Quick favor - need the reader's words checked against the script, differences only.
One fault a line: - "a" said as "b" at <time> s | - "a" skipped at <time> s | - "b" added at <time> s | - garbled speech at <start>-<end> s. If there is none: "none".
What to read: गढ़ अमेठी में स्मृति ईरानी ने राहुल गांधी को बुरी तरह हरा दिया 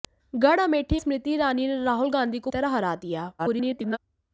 - "में" skipped at 1.0 s
- "बुरी" skipped at 2.5 s
- garbled speech at 3.4-4.0 s